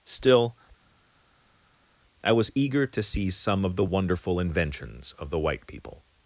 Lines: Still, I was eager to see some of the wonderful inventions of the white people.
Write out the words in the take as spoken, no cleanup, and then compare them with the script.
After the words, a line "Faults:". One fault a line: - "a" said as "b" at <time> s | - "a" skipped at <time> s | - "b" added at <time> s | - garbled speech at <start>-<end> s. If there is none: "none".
Still, I was eager to see some of the wonderful inventions of the white people.
Faults:
none